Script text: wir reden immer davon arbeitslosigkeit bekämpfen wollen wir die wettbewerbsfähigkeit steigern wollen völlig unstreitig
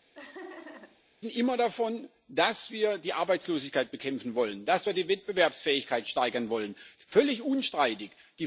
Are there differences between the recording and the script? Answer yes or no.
yes